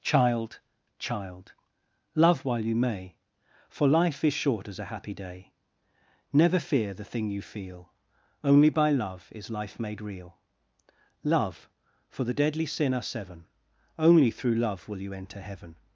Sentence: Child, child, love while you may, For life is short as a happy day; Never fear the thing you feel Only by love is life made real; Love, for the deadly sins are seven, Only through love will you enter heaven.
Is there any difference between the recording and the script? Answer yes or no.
yes